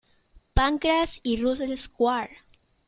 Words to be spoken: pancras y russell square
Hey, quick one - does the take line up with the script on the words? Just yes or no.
yes